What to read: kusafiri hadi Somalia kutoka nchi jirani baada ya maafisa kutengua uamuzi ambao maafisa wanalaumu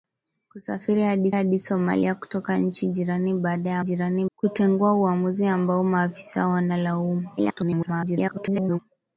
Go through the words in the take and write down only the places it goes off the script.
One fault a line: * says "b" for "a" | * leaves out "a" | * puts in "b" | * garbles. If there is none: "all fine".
* puts in "hadi"
* says "jirani" for "maafisa"
* garbles